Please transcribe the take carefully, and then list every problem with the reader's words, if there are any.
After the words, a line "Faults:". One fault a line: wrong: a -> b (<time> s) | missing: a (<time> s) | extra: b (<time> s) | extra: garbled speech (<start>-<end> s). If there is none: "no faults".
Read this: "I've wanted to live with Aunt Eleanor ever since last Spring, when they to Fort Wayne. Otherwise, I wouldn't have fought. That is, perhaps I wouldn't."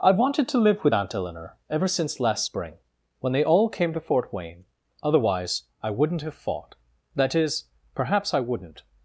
"I've wanted to live with Aunt Eleanor ever since last Spring, when they all came to Fort Wayne. Otherwise, I wouldn't have fought. That is, perhaps I wouldn't."
Faults:
extra: all came (3.4 s)